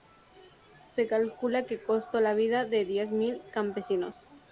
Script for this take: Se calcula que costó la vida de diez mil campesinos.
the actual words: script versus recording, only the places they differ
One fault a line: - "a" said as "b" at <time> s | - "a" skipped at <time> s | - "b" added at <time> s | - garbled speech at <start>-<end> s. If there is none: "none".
none